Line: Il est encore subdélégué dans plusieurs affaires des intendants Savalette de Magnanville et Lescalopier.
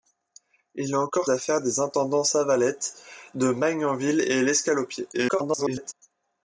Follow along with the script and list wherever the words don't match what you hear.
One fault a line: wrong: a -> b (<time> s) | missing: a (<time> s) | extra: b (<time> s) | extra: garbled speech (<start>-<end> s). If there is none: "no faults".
missing: subdélégué dans plusieurs (1.3 s)
extra: garbled speech (5.1-5.9 s)